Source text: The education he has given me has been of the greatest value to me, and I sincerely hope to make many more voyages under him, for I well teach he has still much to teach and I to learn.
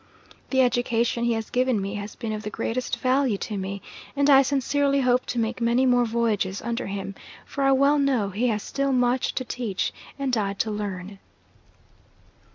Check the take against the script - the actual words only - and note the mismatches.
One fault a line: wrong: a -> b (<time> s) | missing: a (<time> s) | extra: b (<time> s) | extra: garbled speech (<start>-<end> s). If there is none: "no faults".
wrong: teach -> know (8.0 s)